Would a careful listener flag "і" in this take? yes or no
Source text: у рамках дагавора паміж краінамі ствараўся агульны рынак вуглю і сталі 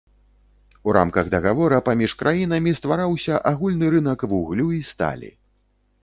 no